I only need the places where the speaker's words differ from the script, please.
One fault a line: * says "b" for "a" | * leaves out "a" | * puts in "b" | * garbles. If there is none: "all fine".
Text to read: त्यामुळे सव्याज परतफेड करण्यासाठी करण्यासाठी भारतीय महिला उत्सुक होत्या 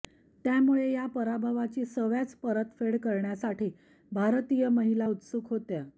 * puts in "या पराभवाची"
* leaves out "करण्यासाठी"